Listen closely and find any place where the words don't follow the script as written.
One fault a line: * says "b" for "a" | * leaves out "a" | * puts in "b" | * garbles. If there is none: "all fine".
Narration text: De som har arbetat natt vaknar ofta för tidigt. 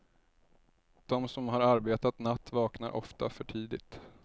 all fine